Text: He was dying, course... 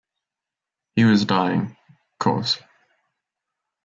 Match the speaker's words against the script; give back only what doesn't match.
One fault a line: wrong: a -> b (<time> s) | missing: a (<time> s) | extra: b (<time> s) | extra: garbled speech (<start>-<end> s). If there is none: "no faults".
no faults